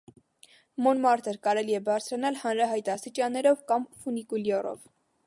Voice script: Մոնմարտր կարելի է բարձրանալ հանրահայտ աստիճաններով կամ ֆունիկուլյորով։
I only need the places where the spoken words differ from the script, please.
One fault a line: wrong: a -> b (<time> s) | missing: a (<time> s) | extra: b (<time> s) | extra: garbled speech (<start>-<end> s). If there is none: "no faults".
no faults